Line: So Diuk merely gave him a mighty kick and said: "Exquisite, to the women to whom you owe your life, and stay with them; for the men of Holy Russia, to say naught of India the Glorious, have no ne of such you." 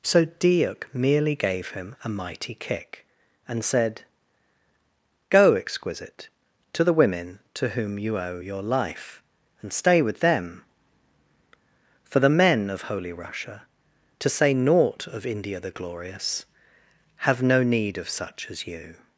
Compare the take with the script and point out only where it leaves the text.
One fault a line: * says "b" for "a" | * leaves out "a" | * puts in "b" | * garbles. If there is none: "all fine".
* puts in "Go"
* says "need" for "ne"
* puts in "as"